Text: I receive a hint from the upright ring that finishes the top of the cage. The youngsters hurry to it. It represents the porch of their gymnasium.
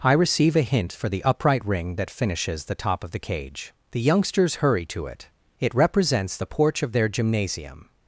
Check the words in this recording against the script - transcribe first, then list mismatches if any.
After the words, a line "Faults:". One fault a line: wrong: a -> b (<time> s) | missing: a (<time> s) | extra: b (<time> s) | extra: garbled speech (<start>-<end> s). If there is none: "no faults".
I receive a hint for the upright ring that finishes the top of the cage. The youngsters hurry to it. It represents the porch of their gymnasium.
Faults:
wrong: from -> for (0.9 s)